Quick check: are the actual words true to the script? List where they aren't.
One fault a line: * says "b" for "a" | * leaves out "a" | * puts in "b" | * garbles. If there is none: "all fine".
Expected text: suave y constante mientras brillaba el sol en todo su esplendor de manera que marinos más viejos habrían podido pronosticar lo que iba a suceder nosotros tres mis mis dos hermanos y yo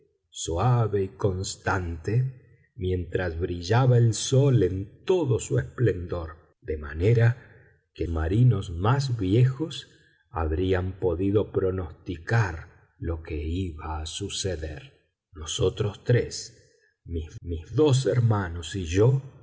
all fine